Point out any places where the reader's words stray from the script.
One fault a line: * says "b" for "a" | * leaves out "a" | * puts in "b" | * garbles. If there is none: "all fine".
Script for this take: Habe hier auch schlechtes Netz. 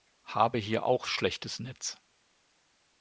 all fine